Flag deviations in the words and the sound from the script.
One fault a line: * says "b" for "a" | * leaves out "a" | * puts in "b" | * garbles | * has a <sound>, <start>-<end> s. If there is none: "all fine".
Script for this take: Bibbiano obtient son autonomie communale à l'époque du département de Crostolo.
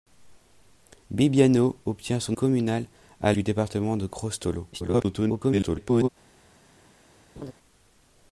* leaves out "autonomie"
* leaves out "l'époque"
* garbles
* has a laugh, 7.4-7.5 s